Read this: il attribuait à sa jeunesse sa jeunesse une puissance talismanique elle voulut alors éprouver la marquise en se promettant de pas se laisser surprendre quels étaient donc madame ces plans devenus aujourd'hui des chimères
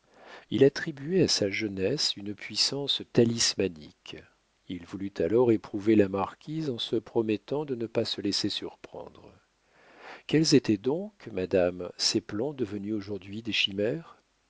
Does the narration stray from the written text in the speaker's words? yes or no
yes